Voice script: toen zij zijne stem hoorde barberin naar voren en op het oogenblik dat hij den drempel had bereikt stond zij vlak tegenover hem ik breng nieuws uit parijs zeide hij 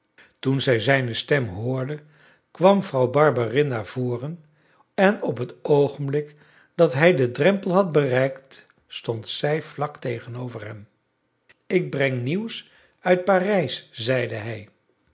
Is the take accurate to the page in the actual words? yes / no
no